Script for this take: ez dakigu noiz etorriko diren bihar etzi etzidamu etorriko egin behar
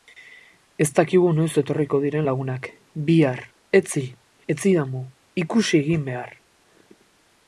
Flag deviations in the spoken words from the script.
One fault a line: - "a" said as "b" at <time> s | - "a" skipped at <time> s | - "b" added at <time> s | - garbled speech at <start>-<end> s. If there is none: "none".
- "lagunak" added at 2.3 s
- "etorriko" said as "ikusi" at 5.4 s